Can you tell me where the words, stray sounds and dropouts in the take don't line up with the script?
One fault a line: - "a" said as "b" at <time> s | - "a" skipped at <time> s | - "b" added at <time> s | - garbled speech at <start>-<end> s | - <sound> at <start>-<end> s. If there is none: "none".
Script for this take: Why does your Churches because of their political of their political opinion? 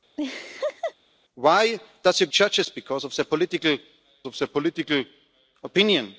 - laugh at 0.2-0.9 s